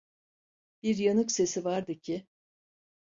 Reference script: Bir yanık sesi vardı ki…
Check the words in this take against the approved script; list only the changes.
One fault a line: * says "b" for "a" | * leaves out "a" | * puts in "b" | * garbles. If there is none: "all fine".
all fine